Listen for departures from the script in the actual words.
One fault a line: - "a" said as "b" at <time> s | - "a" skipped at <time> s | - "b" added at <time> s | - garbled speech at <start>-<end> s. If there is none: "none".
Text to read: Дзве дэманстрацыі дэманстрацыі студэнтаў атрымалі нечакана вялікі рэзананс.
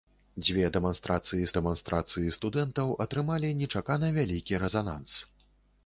none